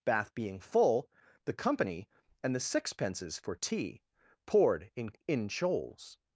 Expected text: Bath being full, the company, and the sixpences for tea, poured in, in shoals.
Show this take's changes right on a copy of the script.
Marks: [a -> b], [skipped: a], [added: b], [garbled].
Bath being full, the company, and the sixpences for tea, poured in, in shoals.